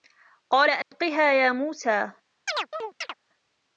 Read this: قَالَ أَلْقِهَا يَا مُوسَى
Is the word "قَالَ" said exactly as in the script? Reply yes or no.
yes